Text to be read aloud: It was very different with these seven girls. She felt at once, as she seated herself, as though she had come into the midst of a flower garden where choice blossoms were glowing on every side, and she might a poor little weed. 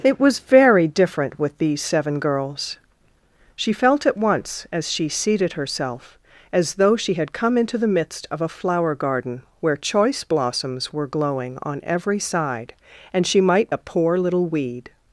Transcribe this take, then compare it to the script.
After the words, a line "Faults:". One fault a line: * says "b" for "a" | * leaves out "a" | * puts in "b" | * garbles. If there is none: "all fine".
It was very different with these seven girls. She felt at once, as she seated herself, as though she had come into the midst of a flower garden where choice blossoms were glowing on every side, and she might a poor little weed.
Faults:
all fine